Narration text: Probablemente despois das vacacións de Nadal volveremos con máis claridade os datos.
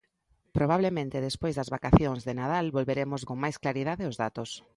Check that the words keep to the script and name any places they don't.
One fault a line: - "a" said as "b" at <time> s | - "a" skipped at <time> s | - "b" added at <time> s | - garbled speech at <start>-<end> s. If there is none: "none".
none